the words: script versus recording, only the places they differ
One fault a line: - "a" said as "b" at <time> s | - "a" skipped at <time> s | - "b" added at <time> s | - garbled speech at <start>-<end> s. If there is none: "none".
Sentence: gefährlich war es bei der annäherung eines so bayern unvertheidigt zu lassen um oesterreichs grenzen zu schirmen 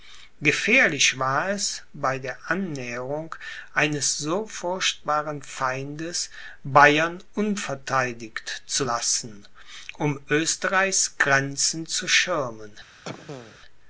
- "furchtbaren feindes" added at 4.5 s